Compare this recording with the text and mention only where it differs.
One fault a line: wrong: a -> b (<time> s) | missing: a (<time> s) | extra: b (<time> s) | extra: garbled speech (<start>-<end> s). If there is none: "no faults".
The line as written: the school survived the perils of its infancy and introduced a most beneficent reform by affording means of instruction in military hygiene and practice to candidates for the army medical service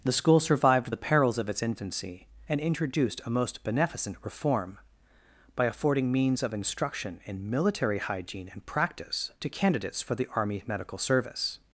no faults